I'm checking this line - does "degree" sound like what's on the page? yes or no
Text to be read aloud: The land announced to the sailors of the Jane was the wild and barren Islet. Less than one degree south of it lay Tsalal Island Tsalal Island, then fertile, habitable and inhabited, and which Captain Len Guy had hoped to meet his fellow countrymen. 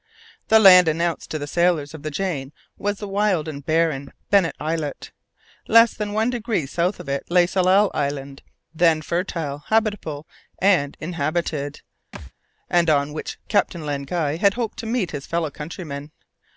yes